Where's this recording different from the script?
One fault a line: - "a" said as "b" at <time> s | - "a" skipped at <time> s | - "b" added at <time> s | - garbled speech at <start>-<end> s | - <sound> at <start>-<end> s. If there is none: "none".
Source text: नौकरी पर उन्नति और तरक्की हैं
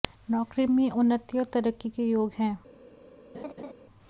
- "पर" said as "में" at 0.7 s
- "के योग" added at 1.9 s
- laugh at 3.3-3.7 s